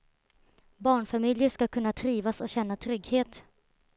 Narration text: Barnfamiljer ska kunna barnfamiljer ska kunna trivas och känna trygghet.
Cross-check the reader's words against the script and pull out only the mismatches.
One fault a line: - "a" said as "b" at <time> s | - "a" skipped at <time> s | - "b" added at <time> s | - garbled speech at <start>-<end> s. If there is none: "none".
- "barnfamiljer ska kunna" skipped at 1.9 s